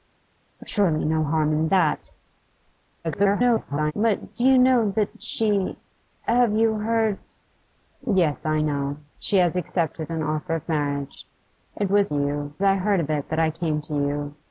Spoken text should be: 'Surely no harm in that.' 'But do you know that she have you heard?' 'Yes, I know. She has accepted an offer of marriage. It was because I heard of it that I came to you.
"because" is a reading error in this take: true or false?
true